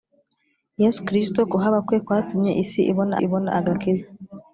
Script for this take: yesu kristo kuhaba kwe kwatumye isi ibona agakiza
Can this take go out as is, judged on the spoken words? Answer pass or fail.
fail